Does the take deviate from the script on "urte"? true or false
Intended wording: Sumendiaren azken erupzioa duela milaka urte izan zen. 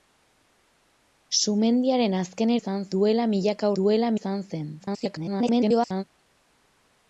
true